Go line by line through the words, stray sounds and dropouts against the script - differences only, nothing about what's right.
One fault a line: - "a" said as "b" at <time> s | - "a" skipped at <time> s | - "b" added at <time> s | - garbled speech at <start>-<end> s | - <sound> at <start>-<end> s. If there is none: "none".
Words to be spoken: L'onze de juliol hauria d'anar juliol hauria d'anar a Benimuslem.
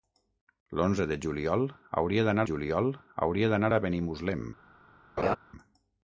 - laugh at 5.2-5.4 s